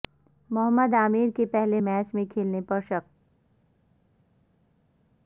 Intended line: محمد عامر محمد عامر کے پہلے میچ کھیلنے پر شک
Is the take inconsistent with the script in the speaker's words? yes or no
yes